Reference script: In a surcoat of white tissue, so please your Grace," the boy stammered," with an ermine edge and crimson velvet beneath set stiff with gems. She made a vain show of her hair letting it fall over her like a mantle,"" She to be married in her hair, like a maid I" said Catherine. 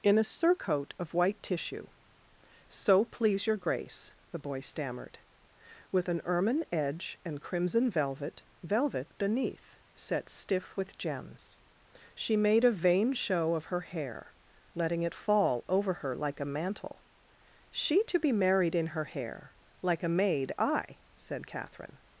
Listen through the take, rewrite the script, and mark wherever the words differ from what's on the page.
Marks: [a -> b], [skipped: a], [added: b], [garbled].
In a surcoat of white tissue, so please your Grace," the boy stammered," with an ermine edge and crimson velvet [added: velvet] beneath set stiff with gems. She made a vain show of her hair letting it fall over her like a mantle,"" She to be married in her hair, like a maid I" said Catherine.